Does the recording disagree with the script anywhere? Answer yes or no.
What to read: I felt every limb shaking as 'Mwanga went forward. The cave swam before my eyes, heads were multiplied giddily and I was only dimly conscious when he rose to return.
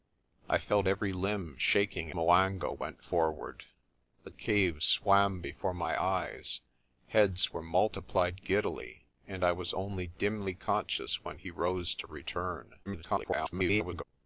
yes